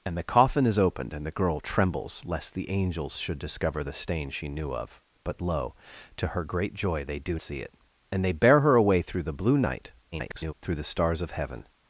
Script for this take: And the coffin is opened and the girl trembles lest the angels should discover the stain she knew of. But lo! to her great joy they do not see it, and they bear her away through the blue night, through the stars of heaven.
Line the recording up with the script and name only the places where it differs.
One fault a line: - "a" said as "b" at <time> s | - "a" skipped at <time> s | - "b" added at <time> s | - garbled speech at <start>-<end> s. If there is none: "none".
- "not" skipped at 7.4 s
- garbled speech at 10.1-10.5 s